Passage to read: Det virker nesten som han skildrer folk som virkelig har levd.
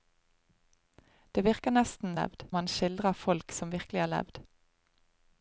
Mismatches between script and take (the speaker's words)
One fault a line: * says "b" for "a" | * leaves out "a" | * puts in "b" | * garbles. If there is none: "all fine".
* says "levd" for "som"